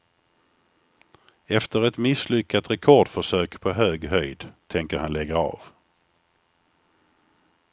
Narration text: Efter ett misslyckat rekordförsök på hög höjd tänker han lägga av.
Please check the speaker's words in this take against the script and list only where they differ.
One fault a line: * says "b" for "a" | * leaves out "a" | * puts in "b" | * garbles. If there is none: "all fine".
all fine